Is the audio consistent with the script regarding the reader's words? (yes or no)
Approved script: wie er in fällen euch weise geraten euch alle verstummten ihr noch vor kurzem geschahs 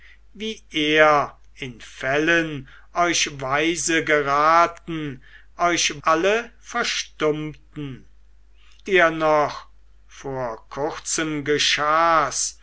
yes